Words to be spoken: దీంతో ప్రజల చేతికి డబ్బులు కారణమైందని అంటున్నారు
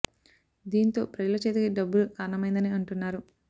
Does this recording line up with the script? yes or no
yes